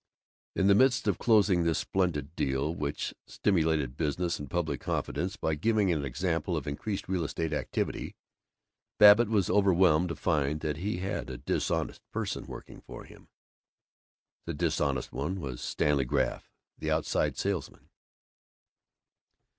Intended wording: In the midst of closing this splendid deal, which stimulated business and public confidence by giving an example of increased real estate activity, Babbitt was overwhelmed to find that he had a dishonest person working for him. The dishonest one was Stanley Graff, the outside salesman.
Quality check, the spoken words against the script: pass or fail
pass